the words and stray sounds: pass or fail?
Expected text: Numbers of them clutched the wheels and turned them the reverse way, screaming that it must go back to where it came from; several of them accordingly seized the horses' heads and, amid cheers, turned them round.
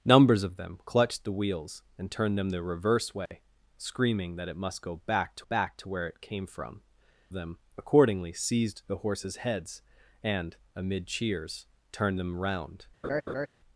fail